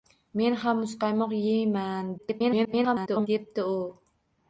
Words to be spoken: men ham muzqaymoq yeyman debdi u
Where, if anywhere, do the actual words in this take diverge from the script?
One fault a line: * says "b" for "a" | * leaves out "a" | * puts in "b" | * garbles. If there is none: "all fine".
* garbles